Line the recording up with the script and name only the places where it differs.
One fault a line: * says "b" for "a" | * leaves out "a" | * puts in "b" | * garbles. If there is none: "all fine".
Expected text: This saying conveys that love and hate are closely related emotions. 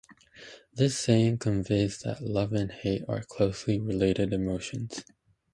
all fine